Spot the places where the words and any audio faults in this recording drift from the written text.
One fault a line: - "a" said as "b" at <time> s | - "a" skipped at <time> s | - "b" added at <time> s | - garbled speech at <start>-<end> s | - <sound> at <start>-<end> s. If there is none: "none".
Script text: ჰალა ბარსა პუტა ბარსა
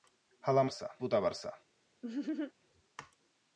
- laugh at 2.0-2.5 s